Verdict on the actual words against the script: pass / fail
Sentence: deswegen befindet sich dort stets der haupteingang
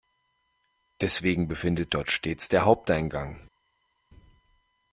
fail